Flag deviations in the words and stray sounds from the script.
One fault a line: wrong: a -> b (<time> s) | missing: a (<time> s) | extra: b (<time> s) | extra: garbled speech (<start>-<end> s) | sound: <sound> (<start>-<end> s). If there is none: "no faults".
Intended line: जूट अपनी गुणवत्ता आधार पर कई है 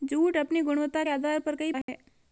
sound: dropout (1.8-1.9 s)